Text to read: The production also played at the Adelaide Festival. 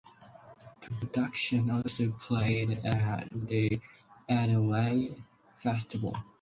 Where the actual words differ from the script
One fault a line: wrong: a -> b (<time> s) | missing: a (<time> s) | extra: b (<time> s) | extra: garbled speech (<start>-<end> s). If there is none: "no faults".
no faults